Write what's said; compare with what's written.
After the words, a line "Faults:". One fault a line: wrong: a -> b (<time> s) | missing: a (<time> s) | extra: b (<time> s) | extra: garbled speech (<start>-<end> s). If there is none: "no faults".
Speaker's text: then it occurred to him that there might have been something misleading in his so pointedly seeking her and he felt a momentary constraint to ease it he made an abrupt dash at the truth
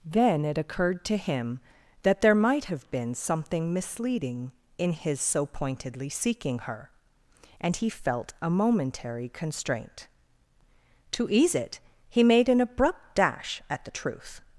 then it occurred to him that there might have been something misleading in his so pointedly seeking her and he felt a momentary constraint to ease it he made an abrupt dash at the truth
Faults:
no faults